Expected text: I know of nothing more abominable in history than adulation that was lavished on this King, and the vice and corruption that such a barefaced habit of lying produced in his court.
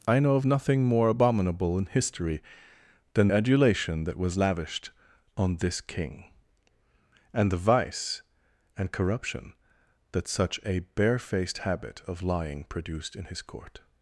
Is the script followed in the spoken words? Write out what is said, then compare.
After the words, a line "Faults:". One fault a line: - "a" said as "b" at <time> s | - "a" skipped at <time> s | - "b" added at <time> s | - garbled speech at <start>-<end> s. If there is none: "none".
I know of nothing more abominable in history than adulation that was lavished on this King, and the vice and corruption that such a barefaced habit of lying produced in his court.
Faults:
none